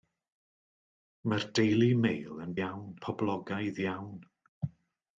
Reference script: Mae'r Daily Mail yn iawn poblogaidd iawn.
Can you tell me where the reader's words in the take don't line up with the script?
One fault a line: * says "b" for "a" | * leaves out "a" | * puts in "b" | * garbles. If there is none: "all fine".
all fine